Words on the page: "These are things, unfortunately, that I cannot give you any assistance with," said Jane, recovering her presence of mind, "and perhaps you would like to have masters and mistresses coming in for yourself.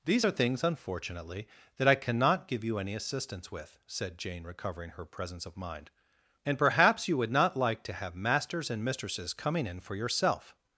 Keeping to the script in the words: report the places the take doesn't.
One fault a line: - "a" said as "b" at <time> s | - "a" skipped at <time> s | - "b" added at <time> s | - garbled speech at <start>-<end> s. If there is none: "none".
- "not" added at 7.3 s